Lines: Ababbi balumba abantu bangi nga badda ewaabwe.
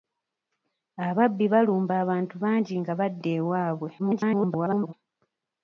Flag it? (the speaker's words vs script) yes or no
yes